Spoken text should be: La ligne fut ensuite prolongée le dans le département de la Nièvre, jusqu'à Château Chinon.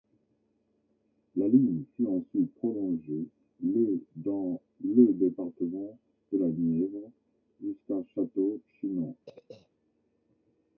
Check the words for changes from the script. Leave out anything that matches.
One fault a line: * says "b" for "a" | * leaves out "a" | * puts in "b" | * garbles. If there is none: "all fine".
all fine